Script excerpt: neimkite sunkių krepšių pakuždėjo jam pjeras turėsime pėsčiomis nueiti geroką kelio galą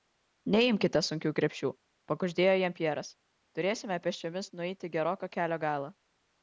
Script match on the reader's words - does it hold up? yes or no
yes